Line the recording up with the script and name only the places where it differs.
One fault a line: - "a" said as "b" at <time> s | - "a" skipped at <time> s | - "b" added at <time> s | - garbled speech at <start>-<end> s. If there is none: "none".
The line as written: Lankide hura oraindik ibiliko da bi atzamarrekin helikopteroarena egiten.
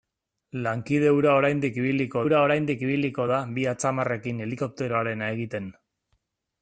- "hura oraindik ibiliko" added at 2.2 s